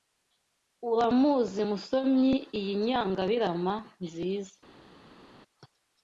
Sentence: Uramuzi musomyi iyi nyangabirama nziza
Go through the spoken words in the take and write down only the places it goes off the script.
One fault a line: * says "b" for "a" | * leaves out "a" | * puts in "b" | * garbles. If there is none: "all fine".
all fine